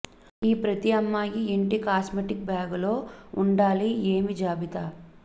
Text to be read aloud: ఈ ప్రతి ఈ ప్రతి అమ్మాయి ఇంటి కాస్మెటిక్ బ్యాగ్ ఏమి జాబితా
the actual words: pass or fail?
fail